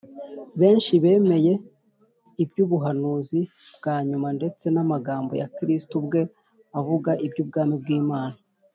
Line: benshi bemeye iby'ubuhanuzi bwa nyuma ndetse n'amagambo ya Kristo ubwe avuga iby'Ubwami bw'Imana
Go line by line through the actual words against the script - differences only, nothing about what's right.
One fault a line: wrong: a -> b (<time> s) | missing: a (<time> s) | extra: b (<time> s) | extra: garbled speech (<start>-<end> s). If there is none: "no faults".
no faults